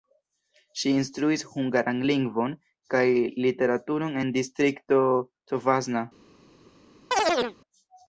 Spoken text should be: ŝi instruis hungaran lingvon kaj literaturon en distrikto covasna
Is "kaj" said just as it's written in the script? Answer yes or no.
yes